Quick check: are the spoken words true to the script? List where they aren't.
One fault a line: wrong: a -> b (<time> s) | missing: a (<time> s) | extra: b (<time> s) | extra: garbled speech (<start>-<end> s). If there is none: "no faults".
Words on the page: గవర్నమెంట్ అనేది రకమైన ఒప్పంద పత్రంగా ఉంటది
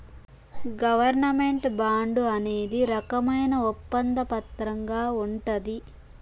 extra: బాండు (1.8 s)